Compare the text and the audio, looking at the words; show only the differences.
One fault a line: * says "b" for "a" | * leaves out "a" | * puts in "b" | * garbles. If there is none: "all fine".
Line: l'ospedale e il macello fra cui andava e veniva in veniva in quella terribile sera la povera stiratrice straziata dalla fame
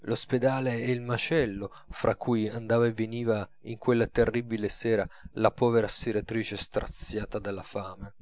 * leaves out "veniva in"